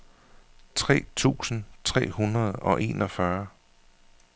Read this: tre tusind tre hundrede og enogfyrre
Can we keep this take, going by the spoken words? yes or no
yes